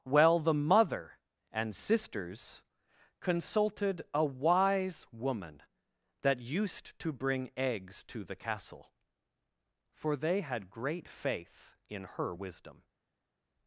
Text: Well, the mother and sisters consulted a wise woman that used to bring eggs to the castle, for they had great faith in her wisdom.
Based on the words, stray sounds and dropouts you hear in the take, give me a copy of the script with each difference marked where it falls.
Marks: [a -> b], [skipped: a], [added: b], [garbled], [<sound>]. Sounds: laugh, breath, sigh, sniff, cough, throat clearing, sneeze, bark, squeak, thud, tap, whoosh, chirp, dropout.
Well, the mother and sisters consulted a wise woman that used to bring eggs to the castle, for they had great faith in her wisdom.